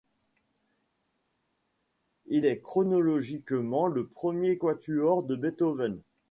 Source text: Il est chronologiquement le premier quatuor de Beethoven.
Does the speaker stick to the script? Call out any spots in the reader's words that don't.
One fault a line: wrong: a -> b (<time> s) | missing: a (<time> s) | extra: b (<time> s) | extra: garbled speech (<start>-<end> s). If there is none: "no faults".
no faults